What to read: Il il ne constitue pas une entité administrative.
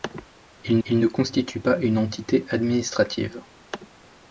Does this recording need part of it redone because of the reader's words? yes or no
no